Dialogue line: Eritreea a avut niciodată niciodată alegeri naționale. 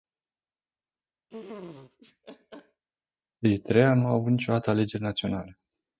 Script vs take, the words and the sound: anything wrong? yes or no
yes